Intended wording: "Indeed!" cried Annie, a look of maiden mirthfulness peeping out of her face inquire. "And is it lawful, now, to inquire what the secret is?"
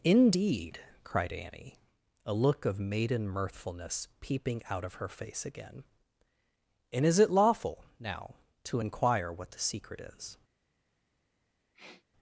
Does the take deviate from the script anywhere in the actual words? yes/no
yes